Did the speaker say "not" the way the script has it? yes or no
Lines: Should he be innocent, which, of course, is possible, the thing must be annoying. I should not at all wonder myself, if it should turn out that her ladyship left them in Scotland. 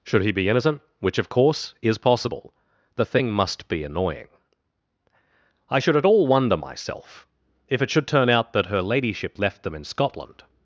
no